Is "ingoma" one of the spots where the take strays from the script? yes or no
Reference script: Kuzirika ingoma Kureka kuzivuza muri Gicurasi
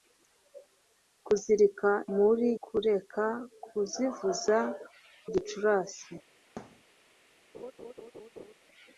yes